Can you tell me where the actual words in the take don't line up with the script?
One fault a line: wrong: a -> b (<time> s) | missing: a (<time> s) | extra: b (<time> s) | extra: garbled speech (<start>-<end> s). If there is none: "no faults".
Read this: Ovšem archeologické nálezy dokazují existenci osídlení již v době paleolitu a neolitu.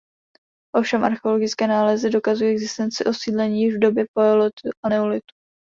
no faults